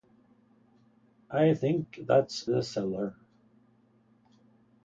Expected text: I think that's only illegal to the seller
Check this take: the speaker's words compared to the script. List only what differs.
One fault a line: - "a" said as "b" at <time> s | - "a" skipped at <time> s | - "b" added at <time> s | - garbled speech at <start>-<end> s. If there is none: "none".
- "only illegal to" skipped at 2.5 s